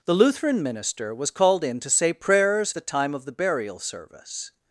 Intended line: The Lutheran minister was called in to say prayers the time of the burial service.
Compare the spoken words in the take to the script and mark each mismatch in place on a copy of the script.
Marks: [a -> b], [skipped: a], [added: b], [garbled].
The Lutheran minister was called in to say prayers the time of the burial service.